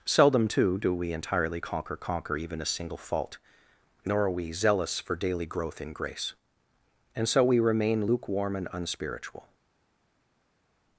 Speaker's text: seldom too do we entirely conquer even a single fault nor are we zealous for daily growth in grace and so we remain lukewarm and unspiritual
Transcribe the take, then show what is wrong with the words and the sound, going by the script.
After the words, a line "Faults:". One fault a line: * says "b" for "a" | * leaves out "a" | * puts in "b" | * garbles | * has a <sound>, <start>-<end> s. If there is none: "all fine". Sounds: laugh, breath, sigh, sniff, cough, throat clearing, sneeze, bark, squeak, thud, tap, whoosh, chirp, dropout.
seldom too do we entirely conquer conquer even a single fault nor are we zealous for daily growth in grace and so we remain lukewarm and unspiritual
Faults:
* puts in "conquer"